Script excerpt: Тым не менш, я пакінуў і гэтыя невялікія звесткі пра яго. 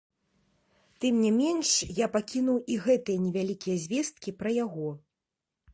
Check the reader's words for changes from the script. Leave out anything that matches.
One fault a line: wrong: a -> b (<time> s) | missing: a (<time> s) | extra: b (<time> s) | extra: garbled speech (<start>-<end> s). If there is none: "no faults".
no faults